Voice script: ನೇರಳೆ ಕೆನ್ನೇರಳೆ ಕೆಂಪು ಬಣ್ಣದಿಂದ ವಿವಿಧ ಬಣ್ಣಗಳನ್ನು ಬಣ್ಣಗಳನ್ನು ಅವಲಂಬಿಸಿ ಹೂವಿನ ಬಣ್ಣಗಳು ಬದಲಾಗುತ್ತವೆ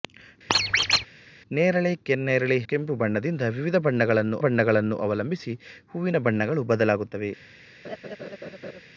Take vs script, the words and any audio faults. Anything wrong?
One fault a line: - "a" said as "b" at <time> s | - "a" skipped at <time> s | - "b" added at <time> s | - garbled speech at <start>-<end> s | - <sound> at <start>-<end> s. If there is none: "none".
- squeak at 0.5-1.1 s
- laugh at 7.8-8.8 s